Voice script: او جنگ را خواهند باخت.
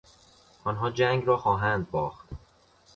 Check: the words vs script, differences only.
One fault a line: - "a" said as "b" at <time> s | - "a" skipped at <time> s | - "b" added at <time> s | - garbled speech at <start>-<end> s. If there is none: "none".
- "او" said as "آنها" at 0.6 s